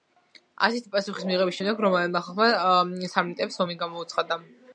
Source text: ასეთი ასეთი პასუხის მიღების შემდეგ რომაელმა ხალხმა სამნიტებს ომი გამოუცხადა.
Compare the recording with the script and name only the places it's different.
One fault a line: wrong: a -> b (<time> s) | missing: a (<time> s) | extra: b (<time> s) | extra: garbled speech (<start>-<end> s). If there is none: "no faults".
missing: ასეთი (0.9 s)